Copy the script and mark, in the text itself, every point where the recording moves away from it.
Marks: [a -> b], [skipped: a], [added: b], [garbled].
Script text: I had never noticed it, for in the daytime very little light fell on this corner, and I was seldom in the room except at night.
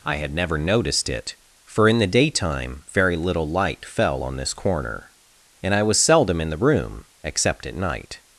I had never noticed it, for in the daytime very little light fell on this corner, and I was seldom in the room except at night.